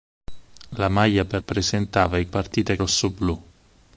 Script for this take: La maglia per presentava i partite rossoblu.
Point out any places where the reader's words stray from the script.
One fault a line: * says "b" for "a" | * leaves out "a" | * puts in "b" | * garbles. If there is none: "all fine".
all fine